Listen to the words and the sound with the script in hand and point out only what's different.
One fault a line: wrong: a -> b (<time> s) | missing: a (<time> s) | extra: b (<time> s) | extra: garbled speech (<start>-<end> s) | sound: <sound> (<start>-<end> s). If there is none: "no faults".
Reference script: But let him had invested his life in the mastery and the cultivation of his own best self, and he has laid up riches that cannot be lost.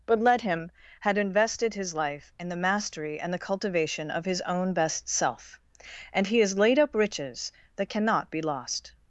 no faults